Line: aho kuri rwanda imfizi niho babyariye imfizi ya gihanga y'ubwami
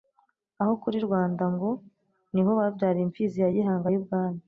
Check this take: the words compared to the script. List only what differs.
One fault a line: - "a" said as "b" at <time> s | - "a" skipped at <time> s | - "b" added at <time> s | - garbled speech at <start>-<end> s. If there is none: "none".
- "imfizi" said as "ngo" at 1.5 s